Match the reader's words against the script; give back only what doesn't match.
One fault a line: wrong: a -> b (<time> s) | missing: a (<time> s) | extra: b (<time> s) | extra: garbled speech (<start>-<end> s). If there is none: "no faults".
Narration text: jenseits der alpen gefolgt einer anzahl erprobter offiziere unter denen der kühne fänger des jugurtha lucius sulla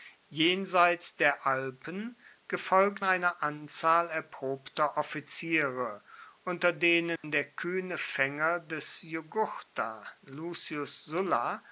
no faults